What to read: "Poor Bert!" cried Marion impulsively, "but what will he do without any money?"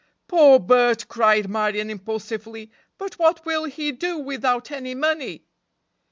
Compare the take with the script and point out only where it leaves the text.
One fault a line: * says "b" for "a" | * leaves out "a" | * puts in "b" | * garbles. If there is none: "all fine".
all fine